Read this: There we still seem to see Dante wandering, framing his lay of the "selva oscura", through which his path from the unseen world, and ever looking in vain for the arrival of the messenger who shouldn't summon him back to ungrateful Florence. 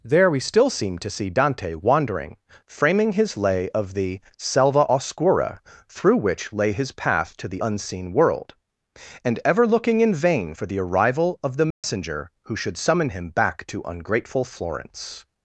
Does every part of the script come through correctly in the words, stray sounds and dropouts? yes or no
no